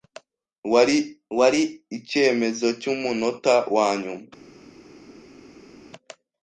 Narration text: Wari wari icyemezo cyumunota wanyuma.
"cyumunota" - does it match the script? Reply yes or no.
yes